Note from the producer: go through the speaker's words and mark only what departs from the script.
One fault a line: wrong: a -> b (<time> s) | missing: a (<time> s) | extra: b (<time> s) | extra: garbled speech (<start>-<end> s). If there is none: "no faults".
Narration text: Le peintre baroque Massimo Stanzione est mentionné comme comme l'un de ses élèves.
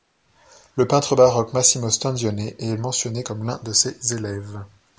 missing: comme (3.4 s)